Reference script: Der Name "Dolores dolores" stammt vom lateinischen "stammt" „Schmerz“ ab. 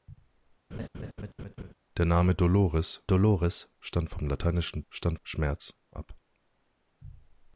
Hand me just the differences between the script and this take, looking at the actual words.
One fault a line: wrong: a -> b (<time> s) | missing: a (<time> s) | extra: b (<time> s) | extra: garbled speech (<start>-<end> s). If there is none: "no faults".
no faults